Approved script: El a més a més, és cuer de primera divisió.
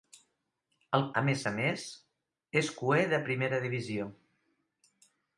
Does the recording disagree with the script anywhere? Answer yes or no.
no